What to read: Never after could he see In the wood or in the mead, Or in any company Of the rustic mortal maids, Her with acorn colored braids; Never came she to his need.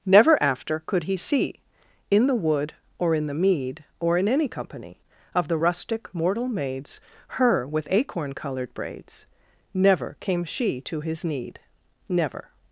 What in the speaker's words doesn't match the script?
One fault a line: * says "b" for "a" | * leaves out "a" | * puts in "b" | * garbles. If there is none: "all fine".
* puts in "Never"